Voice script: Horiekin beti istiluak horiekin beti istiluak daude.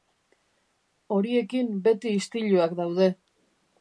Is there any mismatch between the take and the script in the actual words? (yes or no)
yes